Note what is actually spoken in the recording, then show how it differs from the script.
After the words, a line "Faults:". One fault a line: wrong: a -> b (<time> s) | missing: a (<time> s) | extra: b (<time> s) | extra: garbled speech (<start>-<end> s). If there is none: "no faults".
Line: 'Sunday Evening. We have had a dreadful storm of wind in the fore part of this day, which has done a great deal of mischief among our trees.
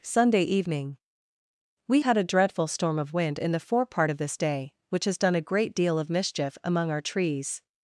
'Sunday Evening. We had a dreadful storm of wind in the fore part of this day, which has done a great deal of mischief among our trees.
Faults:
missing: have (2.0 s)